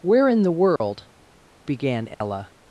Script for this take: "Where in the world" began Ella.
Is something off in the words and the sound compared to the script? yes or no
yes